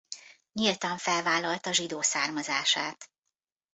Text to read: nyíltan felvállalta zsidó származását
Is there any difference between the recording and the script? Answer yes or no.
no